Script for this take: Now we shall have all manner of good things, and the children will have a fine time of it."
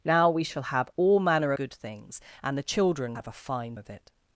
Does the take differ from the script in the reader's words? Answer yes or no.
yes